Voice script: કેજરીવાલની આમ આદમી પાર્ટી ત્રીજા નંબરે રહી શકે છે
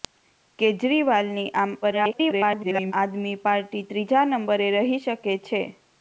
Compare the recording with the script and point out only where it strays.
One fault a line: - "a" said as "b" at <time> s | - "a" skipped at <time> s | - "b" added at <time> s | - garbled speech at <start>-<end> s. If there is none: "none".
- garbled speech at 1.8-2.9 s